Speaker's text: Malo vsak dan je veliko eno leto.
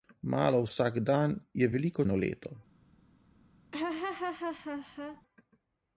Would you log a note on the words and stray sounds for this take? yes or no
yes